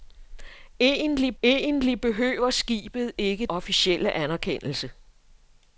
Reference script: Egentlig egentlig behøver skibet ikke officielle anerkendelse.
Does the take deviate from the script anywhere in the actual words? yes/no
no